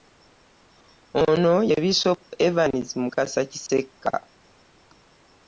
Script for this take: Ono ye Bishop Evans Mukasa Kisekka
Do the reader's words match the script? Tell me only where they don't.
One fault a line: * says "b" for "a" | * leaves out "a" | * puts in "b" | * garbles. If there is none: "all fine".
all fine